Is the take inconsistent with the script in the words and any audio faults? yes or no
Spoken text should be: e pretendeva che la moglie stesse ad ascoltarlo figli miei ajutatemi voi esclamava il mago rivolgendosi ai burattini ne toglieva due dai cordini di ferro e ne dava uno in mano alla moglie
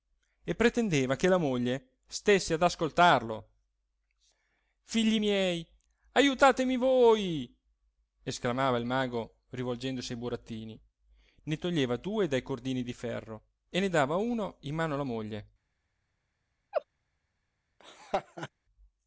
yes